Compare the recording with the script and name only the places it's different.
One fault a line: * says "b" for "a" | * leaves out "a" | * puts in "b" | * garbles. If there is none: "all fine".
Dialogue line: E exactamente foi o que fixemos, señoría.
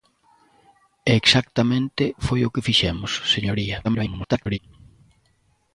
* garbles